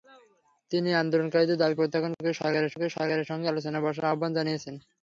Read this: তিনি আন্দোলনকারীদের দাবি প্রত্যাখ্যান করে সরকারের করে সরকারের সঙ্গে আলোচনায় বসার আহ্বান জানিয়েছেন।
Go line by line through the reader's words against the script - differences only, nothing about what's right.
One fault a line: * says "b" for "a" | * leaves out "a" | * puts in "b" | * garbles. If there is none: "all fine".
all fine